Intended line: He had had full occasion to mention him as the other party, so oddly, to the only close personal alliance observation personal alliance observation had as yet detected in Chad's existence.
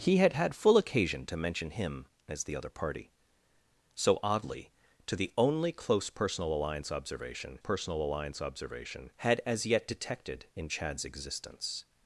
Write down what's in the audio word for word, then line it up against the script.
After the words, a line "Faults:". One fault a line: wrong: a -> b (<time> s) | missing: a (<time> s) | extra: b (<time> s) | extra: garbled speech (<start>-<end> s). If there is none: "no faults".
He had had full occasion to mention him as the other party, so oddly, to the only close personal alliance observation personal alliance observation had as yet detected in Chad's existence.
Faults:
no faults